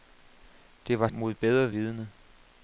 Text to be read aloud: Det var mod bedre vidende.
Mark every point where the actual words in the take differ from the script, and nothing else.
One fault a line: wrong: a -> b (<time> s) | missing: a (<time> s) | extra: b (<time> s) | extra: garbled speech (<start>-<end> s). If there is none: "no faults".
no faults